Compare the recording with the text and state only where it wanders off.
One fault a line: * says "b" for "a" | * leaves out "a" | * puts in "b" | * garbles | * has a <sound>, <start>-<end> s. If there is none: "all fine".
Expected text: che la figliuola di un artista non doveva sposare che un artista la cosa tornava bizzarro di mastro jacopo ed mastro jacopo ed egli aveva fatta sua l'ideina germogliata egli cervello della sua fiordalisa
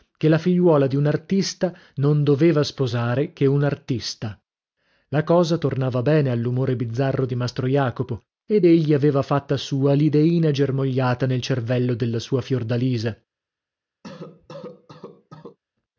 * puts in "bene all'umore"
* leaves out "mastro jacopo ed"
* says "nel" for "egli"
* has a cough, 14.0-15.6 s